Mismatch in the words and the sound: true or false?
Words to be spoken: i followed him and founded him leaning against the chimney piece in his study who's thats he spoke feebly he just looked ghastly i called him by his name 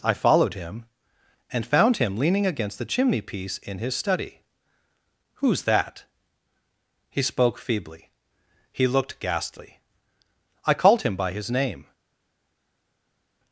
true